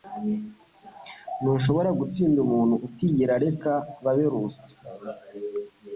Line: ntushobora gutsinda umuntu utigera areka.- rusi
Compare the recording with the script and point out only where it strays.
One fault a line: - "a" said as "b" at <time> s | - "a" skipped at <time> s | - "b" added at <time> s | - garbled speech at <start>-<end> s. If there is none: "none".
- "babe" added at 4.0 s